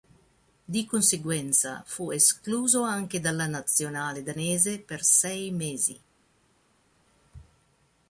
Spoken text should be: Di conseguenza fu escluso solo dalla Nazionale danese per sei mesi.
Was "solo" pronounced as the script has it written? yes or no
no